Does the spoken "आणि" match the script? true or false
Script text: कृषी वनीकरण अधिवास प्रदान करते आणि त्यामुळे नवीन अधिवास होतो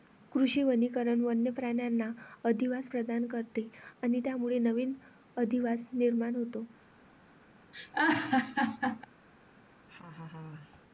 true